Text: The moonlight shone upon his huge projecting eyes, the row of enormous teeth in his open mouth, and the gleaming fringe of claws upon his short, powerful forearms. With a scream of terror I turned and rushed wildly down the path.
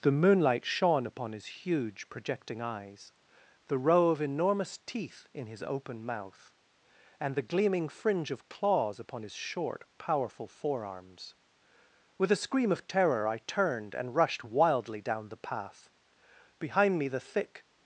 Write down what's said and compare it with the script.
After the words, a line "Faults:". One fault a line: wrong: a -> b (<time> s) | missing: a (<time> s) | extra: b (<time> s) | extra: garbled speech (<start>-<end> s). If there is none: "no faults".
The moonlight shone upon his huge projecting eyes, the row of enormous teeth in his open mouth, and the gleaming fringe of claws upon his short, powerful forearms. With a scream of terror I turned and rushed wildly down the path. Behind me the thick
Faults:
extra: Behind me the thick (16.6 s)